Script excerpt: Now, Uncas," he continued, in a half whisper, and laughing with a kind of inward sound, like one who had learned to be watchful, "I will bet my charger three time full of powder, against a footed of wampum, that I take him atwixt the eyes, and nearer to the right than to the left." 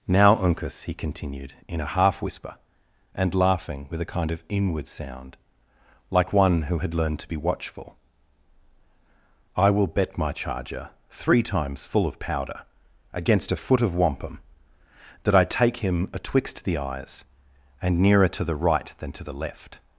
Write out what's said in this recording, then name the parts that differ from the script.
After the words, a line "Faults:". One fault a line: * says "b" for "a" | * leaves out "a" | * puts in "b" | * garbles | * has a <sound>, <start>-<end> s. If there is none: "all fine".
Now, Uncas," he continued, in a half whisper, and laughing with a kind of inward sound, like one who had learned to be watchful, "I will bet my charger three times full of powder, against a foot of wampum, that I take him atwixt the eyes, and nearer to the right than to the left."
Faults:
* says "times" for "time"
* says "foot" for "footed"